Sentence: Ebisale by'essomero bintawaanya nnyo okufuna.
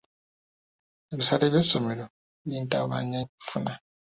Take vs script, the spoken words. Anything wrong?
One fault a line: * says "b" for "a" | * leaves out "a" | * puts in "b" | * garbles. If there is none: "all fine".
* leaves out "nnyo"